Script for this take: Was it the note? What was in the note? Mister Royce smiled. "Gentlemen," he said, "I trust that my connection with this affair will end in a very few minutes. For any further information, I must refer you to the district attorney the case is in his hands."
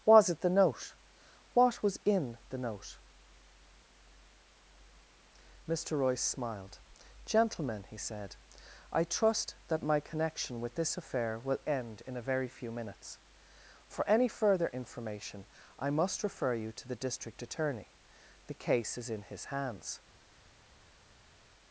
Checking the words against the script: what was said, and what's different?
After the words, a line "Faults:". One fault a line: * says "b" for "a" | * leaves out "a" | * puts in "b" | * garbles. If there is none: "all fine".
Was it the note? What was in the note? Mister Royce smiled. "Gentlemen," he said, "I trust that my connection with this affair will end in a very few minutes. For any further information, I must refer you to the district attorney the case is in his hands."
Faults:
all fine